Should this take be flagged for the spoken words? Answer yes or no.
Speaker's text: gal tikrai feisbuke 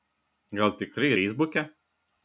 no